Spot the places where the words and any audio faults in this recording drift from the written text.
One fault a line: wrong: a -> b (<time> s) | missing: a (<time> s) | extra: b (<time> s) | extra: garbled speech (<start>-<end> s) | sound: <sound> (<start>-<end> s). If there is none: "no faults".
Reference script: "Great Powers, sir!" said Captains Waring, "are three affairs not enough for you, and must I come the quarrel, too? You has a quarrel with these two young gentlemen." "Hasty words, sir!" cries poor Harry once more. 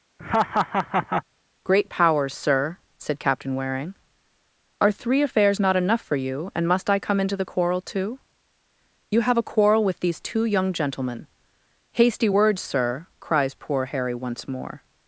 sound: laugh (0.2-1.2 s)
wrong: Captains -> Captain (3.2 s)
extra: into (7.2 s)
wrong: has -> have (9.2 s)